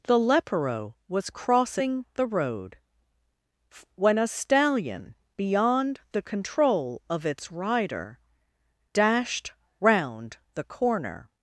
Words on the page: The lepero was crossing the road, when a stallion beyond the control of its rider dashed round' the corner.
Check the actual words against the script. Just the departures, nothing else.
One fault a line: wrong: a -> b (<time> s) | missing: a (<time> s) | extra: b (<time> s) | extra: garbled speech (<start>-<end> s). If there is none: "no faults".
no faults